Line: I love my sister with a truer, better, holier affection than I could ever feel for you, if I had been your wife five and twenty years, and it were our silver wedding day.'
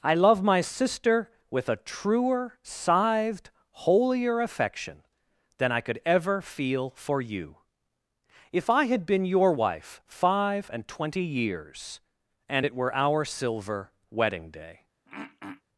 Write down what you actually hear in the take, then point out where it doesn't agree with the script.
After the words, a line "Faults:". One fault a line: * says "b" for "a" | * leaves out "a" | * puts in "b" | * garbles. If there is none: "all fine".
I love my sister with a truer, scythed, holier affection than I could ever feel for you, if I had been your wife five and twenty years, and it were our silver wedding day.'
Faults:
* says "scythed" for "better"